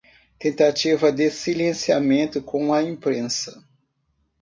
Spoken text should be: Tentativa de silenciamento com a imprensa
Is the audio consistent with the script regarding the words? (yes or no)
yes